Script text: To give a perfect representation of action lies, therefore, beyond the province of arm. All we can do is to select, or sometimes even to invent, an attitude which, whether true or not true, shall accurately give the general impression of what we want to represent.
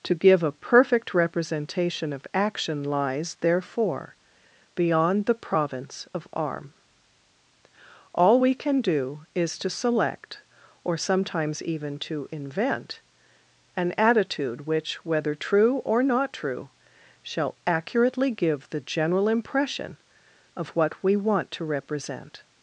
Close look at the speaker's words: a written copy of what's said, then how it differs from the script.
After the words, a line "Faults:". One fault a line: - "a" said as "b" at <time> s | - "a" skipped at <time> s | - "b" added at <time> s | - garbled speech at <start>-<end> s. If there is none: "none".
To give a perfect representation of action lies, therefore, beyond the province of arm. All we can do is to select, or sometimes even to invent, an attitude which, whether true or not true, shall accurately give the general impression of what we want to represent.
Faults:
none